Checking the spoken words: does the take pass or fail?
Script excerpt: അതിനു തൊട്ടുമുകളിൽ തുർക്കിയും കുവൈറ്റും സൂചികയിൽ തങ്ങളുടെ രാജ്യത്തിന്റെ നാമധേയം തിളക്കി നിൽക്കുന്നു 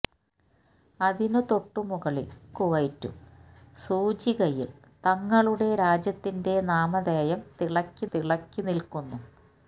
fail